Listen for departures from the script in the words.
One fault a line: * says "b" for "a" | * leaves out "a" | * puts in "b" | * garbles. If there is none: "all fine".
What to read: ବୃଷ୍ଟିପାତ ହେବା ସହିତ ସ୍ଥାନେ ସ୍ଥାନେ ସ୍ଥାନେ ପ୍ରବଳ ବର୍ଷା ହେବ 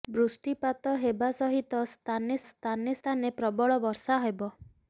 all fine